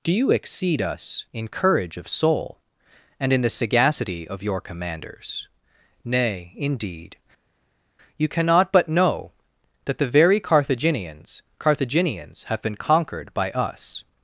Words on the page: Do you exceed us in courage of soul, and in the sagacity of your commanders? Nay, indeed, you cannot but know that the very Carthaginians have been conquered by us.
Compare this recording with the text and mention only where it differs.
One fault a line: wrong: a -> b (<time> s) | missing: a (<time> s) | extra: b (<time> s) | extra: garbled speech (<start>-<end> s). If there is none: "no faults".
extra: Carthaginians (11.6 s)